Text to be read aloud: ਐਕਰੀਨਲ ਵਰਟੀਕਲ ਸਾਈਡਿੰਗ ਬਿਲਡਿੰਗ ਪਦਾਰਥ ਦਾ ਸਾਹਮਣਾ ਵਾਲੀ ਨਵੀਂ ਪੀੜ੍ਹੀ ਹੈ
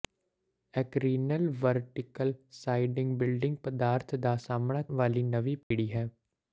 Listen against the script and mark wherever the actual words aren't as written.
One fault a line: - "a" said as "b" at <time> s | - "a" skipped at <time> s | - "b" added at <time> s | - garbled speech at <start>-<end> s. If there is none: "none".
none